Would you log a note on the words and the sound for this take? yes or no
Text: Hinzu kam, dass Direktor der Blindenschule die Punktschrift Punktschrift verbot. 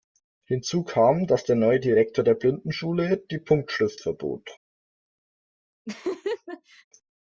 yes